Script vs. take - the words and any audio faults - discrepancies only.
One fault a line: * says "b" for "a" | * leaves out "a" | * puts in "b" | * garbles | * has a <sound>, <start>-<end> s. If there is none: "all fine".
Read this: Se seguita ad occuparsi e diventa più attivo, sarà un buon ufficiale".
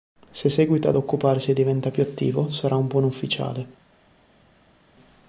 all fine